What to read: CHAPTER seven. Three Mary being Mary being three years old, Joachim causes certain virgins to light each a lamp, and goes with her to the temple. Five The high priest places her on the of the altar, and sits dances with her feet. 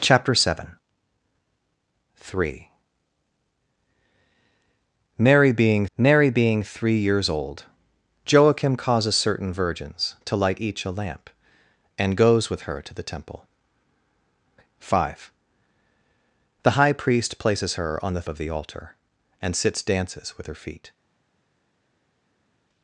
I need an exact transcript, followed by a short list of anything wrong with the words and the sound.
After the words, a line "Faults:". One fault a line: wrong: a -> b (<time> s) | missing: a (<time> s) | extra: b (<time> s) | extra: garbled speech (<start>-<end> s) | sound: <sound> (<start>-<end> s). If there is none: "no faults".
CHAPTER seven. Three Mary being Mary being three years old, Joachim causes certain virgins to light each a lamp, and goes with her to the temple. Five The high priest places her on the of the altar, and sits dances with her feet.
Faults:
no faults